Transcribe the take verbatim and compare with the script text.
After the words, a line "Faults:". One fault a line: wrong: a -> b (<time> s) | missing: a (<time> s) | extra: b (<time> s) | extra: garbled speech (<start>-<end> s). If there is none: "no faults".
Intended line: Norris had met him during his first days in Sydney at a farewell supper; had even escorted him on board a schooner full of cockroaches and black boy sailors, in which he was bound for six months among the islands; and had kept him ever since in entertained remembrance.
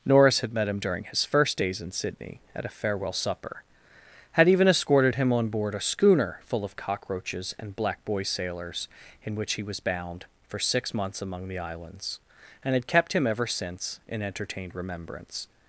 Norris had met him during his first days in Sydney at a farewell supper; had even escorted him on board a schooner full of cockroaches and black boy sailors, in which he was bound for six months among the islands; and had kept him ever since in entertained remembrance.
Faults:
no faults